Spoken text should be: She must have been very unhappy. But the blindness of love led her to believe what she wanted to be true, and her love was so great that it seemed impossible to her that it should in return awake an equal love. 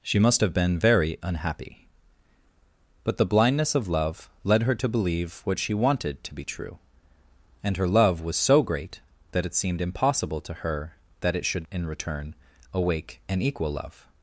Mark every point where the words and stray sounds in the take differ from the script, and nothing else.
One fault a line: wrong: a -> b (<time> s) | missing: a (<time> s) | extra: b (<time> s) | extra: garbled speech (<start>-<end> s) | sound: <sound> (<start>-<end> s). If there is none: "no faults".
no faults